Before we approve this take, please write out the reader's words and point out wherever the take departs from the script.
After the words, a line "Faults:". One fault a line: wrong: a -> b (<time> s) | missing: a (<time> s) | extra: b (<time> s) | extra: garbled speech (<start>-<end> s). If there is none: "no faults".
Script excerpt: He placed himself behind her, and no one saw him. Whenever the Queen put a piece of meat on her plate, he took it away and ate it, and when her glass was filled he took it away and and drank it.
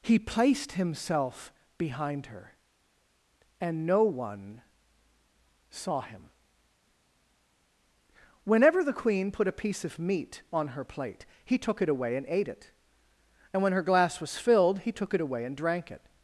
He placed himself behind her, and no one saw him. Whenever the Queen put a piece of meat on her plate, he took it away and ate it, and when her glass was filled he took it away and drank it.
Faults:
missing: and (15.6 s)